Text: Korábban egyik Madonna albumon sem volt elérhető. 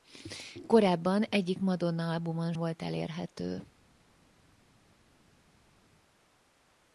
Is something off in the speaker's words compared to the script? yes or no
yes